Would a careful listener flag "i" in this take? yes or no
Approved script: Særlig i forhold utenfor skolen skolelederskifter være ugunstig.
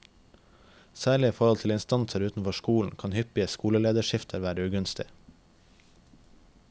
no